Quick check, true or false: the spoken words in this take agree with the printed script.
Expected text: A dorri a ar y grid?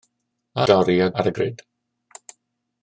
true